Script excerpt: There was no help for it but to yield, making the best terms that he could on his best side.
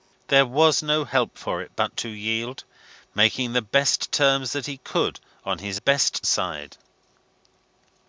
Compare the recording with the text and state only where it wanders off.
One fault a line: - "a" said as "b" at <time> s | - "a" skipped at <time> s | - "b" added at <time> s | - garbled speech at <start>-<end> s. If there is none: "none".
none